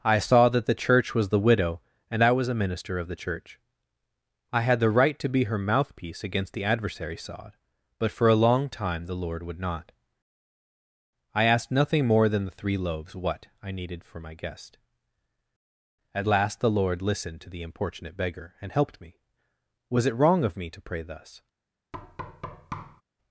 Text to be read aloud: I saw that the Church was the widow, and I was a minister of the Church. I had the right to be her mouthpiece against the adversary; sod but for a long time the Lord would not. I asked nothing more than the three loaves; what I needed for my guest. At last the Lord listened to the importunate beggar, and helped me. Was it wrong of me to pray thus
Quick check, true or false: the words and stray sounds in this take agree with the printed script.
false